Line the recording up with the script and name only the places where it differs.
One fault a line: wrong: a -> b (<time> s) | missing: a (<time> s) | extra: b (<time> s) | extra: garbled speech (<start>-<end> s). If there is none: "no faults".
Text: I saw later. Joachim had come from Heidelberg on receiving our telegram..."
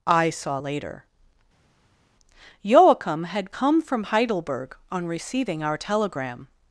no faults